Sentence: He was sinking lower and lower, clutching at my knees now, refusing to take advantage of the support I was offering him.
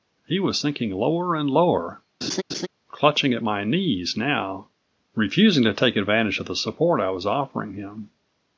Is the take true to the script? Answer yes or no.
yes